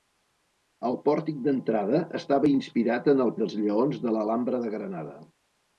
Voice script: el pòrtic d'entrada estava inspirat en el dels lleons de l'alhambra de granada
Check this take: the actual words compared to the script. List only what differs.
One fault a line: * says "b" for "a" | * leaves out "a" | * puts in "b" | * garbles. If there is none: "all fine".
all fine